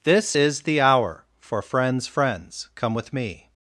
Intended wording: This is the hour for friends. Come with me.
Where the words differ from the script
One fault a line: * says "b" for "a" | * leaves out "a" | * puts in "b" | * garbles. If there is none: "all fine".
* puts in "friends"